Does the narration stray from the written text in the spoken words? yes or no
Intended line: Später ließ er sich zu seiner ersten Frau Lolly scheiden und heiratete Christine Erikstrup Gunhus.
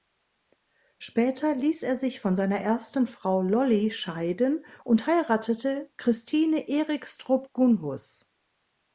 yes